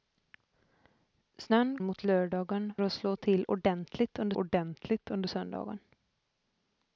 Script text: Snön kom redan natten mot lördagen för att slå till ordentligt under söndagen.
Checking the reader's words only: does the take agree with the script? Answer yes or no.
no